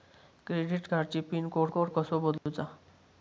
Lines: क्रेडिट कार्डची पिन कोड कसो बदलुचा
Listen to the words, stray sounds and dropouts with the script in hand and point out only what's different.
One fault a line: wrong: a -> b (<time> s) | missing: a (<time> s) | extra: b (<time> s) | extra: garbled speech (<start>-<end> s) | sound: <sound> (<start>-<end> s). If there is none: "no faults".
extra: कोड (1.7 s)
sound: dropout (2.4-2.5 s)